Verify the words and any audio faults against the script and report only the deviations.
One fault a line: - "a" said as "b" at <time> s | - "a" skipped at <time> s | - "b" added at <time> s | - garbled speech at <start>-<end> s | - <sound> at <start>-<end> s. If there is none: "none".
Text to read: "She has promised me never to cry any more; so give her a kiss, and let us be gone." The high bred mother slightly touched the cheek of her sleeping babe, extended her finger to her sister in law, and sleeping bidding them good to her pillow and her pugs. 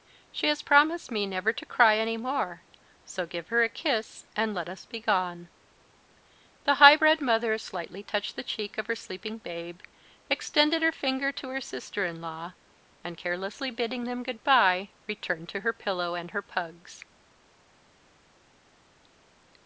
- "sleeping" said as "carelessly" at 13.2 s
- "bye returned" added at 14.4 s